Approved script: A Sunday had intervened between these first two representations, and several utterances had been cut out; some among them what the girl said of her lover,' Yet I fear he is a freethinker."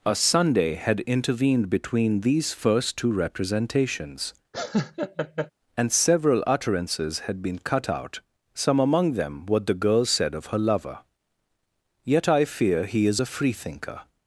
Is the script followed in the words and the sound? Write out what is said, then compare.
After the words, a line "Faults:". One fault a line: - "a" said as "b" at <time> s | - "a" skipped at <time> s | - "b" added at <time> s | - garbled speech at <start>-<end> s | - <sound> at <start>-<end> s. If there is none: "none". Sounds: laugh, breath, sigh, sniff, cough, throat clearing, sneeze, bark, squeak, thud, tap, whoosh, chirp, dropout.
A Sunday had intervened between these first two representations, and several utterances had been cut out; some among them what the girl said of her lover,' Yet I fear he is a freethinker."
Faults:
- laugh at 4.5-5.5 s